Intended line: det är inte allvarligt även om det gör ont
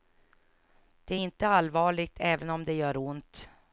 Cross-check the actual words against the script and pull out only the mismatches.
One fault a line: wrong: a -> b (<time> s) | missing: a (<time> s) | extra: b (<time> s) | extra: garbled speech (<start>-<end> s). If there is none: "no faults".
no faults